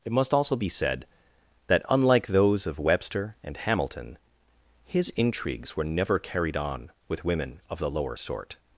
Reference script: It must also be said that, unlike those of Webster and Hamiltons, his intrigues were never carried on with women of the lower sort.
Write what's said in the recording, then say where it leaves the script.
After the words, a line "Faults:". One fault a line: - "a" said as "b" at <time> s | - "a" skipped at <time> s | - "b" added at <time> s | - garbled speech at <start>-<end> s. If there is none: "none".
It must also be said that, unlike those of Webster and Hamilton, his intrigues were never carried on with women of the lower sort.
Faults:
- "Hamiltons" said as "Hamilton" at 3.6 s